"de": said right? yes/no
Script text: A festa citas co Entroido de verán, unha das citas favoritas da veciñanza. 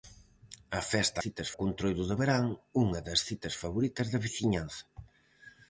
yes